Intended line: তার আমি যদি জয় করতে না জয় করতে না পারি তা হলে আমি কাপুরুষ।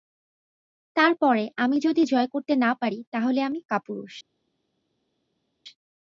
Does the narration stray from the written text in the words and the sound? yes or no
yes